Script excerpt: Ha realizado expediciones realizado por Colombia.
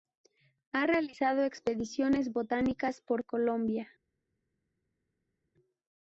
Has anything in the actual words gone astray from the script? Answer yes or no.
yes